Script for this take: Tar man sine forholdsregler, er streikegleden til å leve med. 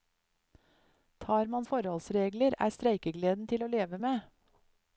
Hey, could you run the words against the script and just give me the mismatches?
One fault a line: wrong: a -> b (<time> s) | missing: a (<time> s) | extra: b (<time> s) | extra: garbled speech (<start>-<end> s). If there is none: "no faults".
missing: sine (1.6 s)